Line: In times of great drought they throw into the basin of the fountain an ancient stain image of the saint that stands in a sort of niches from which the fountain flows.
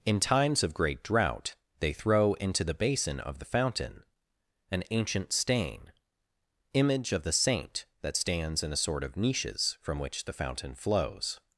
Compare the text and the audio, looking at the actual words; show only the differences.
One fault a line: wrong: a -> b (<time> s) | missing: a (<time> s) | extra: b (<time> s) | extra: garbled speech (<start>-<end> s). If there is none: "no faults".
no faults